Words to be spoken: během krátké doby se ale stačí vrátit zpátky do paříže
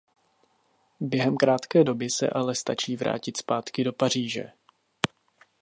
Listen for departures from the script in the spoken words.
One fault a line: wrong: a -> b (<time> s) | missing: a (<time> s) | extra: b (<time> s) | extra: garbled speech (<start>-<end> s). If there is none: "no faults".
no faults